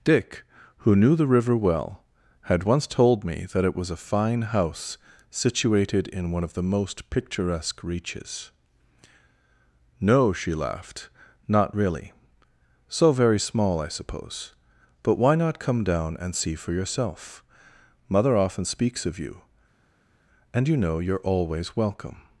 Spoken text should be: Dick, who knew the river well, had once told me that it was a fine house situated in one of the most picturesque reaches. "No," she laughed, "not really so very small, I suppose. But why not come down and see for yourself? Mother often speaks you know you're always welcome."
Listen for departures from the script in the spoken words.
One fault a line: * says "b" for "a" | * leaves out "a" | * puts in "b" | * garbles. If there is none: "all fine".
* puts in "of you and"